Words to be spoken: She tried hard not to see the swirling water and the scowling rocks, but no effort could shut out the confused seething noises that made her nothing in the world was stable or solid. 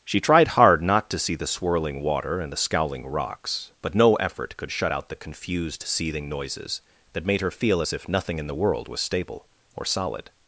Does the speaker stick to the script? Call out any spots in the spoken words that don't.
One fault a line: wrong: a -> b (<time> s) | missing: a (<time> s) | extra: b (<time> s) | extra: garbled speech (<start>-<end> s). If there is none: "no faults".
extra: feel as if (7.5 s)